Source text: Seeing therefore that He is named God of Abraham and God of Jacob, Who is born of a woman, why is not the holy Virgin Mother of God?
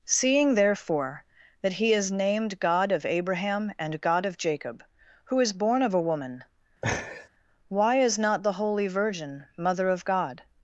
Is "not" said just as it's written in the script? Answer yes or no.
yes